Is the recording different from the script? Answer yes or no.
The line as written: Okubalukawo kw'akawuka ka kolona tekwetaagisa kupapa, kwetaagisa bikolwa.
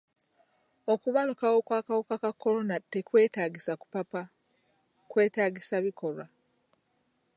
no